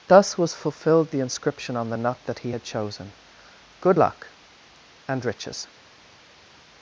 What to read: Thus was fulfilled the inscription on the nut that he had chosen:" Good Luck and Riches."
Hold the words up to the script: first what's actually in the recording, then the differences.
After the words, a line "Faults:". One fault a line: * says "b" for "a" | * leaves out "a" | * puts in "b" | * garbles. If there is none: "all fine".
Thus was fulfilled the inscription on the nut that he had chosen:" Good Luck and Riches."
Faults:
all fine